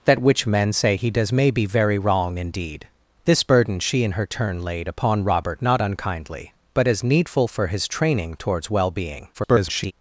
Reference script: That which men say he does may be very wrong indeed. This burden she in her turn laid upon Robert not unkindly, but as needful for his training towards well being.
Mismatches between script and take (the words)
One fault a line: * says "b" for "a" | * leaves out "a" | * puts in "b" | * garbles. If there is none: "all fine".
* garbles